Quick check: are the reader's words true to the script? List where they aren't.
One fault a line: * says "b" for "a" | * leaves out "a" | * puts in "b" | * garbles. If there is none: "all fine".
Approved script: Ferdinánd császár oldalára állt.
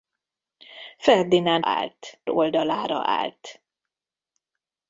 * says "állt" for "császár"